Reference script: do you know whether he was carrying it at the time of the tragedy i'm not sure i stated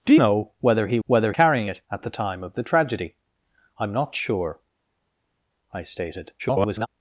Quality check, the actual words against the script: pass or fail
fail